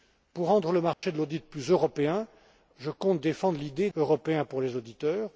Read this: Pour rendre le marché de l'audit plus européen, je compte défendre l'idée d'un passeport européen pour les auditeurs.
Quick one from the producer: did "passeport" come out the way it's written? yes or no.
no